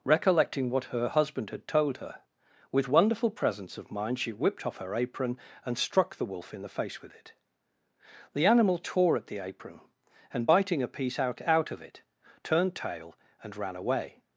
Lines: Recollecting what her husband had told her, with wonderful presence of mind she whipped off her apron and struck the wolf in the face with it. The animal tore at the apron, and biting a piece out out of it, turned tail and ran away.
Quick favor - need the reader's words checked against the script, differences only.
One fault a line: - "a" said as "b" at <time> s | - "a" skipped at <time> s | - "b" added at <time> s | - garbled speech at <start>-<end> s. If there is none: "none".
none